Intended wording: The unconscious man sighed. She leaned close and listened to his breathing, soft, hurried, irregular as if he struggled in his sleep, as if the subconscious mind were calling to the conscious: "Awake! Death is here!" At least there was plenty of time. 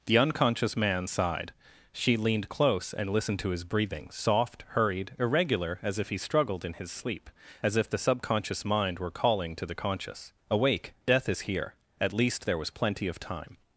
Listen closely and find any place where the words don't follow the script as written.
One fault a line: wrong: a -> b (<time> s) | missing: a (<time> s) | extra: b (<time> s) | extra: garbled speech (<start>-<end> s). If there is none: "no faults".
no faults